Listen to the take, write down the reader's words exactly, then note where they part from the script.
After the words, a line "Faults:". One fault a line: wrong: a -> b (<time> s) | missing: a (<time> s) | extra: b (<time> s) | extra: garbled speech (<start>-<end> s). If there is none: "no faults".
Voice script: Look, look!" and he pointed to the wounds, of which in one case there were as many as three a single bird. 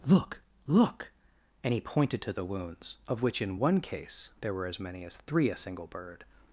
Look, look!" and he pointed to the wounds, of which in one case there were as many as three a single bird.
Faults:
no faults